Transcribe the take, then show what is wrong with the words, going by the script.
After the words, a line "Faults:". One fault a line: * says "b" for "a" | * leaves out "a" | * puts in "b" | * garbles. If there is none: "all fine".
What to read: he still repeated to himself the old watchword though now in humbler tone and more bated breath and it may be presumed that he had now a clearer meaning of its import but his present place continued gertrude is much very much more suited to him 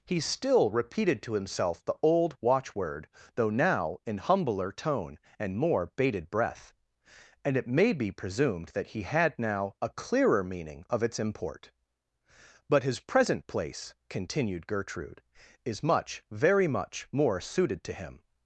he still repeated to himself the old watchword though now in humbler tone and more bated breath and it may be presumed that he had now a clearer meaning of its import but his present place continued gertrude is much very much more suited to him
Faults:
all fine